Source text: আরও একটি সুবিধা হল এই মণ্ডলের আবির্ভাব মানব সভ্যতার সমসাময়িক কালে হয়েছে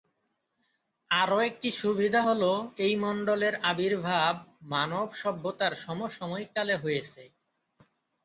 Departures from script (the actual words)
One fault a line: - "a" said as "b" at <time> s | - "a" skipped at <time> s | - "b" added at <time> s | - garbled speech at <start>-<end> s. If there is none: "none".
none